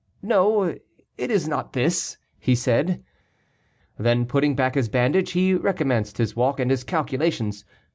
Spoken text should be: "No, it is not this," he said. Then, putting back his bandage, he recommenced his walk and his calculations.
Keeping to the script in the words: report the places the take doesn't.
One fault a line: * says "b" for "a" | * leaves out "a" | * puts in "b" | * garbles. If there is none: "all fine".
all fine